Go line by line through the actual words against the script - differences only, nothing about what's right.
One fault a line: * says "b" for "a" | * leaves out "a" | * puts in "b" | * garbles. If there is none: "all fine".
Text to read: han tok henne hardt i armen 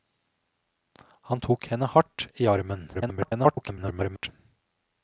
* garbles